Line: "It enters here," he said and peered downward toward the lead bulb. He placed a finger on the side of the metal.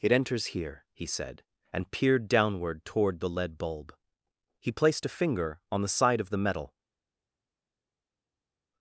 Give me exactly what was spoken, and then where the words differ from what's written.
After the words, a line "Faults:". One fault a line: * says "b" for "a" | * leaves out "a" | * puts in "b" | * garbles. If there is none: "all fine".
"It enters here," he said and peered downward toward the lead bulb. He placed a finger on the side of the metal.
Faults:
all fine